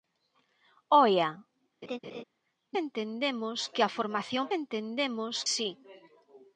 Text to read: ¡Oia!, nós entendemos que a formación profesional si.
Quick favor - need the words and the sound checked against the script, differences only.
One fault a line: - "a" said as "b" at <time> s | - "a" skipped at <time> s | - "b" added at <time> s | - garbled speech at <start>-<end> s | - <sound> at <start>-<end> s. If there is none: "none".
- "nós" skipped at 1.3 s
- laugh at 1.8-2.2 s
- "profesional" said as "entendemos" at 4.6 s